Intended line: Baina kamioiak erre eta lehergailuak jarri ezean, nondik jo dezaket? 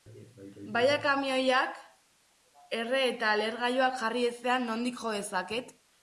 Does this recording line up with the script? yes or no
yes